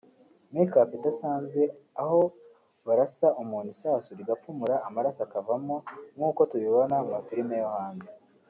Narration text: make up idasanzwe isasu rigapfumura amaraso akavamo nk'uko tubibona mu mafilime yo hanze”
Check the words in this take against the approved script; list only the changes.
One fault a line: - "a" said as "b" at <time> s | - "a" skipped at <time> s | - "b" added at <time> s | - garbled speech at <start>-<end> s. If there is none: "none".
- "aho barasa umuntu" added at 2.0 s